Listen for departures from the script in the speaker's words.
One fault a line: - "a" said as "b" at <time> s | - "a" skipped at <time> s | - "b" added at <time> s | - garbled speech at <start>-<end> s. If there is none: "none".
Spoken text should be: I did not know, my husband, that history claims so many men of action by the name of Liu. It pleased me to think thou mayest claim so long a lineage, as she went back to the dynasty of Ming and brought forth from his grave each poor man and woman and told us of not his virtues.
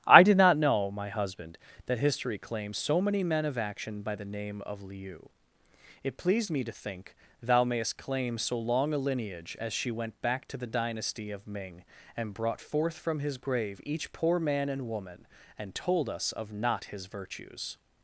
none